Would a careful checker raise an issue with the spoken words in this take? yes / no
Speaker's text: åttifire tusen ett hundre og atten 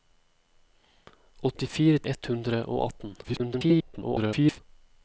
yes